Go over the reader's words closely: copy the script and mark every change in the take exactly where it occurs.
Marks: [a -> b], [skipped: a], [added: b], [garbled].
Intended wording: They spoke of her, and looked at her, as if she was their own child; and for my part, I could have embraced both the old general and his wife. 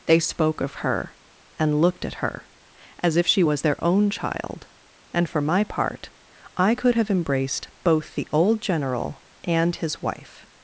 They spoke of her, and looked at her, as if she was their own child; and for my part, I could have embraced both the old general and his wife.